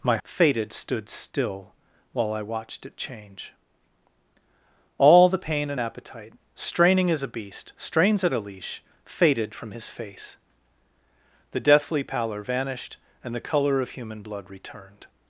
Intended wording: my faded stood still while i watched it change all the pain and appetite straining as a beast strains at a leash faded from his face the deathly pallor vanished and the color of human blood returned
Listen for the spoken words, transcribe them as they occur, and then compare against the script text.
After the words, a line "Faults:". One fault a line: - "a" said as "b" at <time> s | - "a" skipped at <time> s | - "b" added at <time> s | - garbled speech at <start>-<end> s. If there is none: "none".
my faded stood still while i watched it change all the pain and appetite straining as a beast strains at a leash faded from his face the deathly pallor vanished and the color of human blood returned
Faults:
none